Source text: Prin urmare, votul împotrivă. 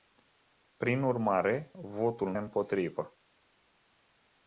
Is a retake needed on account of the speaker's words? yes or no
no